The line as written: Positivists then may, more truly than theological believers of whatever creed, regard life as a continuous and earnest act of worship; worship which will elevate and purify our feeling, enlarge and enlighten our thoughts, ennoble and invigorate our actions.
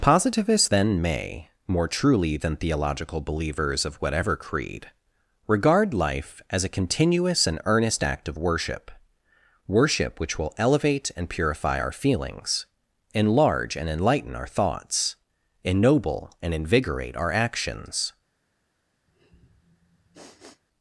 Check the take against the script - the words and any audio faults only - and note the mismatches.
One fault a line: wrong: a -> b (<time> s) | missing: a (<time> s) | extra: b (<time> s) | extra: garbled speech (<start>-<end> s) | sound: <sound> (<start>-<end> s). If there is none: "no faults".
wrong: feeling -> feelings (11.9 s)
sound: sniff (19.1-20.6 s)